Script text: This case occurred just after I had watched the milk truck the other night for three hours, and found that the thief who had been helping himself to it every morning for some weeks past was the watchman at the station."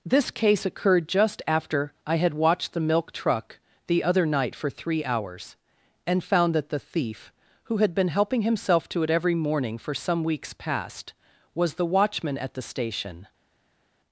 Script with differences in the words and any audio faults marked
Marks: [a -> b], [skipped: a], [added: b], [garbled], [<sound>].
This case occurred just after I had watched the milk truck the other night for three hours, and found that the thief who had been helping himself to it every morning for some weeks past was the watchman at the station."